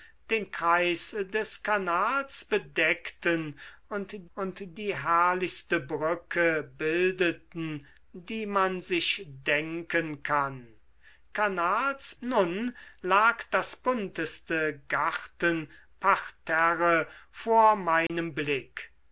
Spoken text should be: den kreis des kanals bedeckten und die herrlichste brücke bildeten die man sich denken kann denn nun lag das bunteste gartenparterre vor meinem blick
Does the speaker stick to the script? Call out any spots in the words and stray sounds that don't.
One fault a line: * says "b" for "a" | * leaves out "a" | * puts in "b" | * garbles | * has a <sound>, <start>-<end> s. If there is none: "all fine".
* puts in "und"
* says "kanals" for "denn"
* has a dropout, 18.1-18.1 s